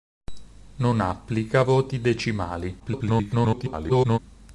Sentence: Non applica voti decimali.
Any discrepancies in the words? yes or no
yes